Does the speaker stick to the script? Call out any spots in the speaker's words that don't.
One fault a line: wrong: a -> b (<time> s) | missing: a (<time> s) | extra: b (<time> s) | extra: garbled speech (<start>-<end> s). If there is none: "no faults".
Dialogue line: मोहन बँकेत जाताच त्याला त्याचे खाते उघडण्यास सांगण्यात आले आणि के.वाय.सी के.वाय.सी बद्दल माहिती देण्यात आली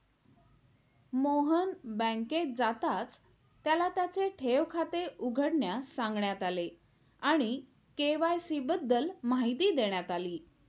extra: ठेव (4.3 s)
missing: के.वाय.सी (8.6 s)